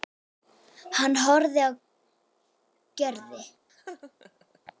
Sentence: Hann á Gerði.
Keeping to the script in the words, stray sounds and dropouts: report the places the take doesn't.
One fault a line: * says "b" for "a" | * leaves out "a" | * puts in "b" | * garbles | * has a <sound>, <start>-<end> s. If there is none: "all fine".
* puts in "horfði"
* has a laugh, 3.7-4.6 s